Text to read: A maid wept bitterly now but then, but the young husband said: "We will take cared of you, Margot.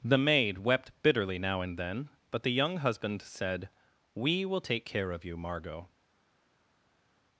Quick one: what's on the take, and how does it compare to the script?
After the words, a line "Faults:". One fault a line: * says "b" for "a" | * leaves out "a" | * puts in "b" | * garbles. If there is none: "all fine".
The maid wept bitterly now and then, but the young husband said: "We will take care of you, Margot.
Faults:
* says "The" for "A"
* says "and" for "but"
* says "care" for "cared"